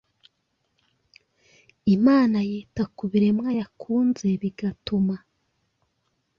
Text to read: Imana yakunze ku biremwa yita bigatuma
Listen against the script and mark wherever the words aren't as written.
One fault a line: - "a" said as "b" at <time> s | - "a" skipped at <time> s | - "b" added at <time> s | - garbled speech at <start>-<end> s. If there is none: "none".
- "yakunze" said as "yita" at 2.5 s
- "yita" said as "yakunze" at 3.6 s